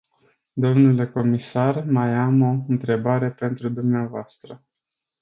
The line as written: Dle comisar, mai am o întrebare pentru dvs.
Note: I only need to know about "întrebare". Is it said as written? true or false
true